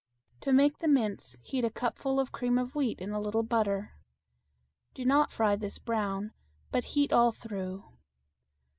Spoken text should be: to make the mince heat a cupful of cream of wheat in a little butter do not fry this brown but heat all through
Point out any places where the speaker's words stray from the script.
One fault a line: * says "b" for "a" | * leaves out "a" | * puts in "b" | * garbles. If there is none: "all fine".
all fine